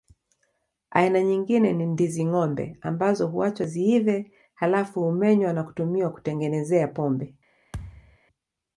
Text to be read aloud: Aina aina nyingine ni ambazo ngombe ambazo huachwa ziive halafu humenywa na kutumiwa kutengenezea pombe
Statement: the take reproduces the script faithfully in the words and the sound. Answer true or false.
false